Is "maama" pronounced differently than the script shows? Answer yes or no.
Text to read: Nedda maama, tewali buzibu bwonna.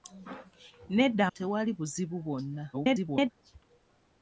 yes